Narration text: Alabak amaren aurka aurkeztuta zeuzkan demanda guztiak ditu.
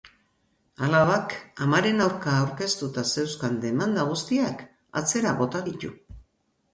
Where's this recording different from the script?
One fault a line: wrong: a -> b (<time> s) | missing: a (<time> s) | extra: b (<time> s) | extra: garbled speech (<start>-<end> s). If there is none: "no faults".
extra: atzera bota (5.0 s)